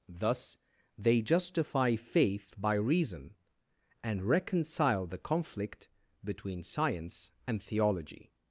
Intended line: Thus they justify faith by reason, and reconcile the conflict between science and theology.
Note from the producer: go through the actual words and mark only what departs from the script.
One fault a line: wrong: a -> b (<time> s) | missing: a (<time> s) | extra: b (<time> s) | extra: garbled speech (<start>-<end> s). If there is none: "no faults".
no faults